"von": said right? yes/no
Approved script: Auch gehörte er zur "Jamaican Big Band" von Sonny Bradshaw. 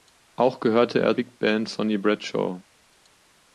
no